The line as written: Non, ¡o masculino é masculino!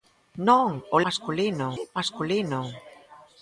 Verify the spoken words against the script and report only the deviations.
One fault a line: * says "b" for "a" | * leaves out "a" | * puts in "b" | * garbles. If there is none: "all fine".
all fine